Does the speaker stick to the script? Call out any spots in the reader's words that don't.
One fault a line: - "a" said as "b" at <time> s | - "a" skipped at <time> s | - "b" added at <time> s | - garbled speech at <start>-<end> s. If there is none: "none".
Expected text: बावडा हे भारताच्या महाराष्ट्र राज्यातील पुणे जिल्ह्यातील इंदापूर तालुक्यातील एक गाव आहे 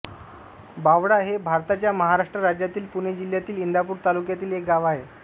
none